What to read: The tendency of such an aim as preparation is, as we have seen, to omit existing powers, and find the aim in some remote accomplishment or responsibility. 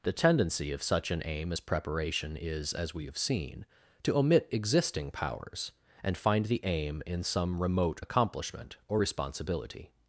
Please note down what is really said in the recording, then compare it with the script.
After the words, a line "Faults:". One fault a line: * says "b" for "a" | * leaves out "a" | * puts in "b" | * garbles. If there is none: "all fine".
The tendency of such an aim as preparation is, as we have seen, to omit existing powers, and find the aim in some remote accomplishment or responsibility.
Faults:
all fine